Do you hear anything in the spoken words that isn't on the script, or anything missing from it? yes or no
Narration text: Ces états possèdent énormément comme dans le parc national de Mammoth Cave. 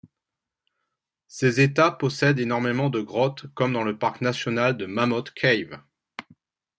yes